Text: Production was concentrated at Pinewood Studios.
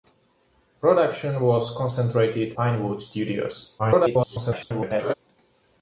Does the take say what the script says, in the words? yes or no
no